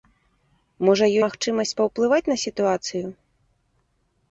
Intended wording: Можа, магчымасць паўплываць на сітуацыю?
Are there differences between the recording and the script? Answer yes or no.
no